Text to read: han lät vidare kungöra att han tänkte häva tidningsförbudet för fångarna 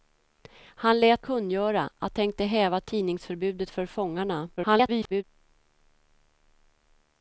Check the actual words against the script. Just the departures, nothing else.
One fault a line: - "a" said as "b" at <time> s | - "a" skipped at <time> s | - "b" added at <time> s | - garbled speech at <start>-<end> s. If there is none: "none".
- "vidare" skipped at 1.2 s
- "han" skipped at 2.2 s
- garbled speech at 4.6-5.2 s